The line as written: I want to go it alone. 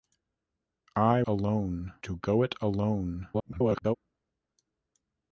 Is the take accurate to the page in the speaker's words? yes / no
no